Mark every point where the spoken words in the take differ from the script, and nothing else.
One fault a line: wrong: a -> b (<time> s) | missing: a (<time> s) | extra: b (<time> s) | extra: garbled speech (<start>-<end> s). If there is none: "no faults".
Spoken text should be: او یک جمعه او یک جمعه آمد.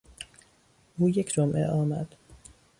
missing: او یک جمعه (1.7 s)